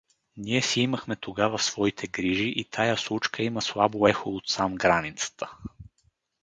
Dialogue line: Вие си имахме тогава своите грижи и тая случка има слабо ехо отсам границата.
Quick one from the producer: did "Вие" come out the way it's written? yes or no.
no